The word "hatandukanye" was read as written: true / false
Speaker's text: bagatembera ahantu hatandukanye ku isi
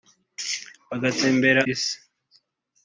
false